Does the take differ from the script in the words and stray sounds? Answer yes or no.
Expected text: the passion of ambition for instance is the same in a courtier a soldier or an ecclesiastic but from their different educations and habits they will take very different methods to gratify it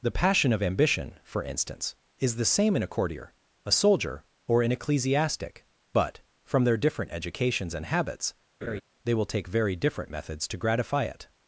yes